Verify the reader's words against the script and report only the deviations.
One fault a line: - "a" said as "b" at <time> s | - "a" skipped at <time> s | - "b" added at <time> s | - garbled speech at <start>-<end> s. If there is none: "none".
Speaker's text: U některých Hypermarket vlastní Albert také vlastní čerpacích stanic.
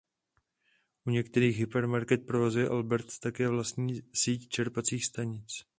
- "vlastní" said as "provozuje" at 2.2 s
- "síť" added at 4.1 s